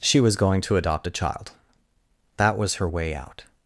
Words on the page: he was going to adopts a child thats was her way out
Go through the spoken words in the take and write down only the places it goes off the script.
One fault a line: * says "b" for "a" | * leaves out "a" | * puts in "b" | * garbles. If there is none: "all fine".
* says "she" for "he"
* says "adopt" for "adopts"
* says "that" for "thats"